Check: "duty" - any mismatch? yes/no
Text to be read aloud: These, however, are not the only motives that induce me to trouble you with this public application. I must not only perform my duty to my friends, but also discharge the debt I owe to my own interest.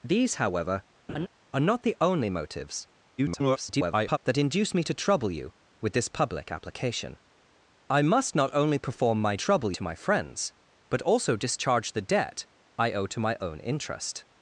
yes